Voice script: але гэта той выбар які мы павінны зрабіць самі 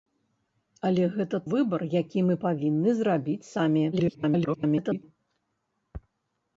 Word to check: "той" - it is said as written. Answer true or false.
false